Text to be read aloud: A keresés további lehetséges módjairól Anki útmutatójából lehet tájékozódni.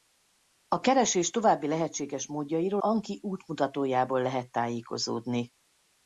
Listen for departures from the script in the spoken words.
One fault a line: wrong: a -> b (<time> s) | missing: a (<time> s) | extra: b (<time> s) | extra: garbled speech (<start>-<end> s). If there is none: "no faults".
no faults